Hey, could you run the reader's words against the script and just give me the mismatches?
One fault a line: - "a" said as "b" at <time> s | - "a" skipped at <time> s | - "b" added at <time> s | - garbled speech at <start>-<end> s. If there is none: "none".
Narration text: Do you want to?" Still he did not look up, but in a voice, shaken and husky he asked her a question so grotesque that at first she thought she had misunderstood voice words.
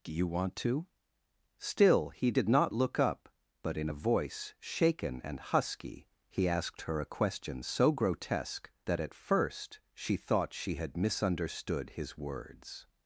- "voice" said as "his" at 11.9 s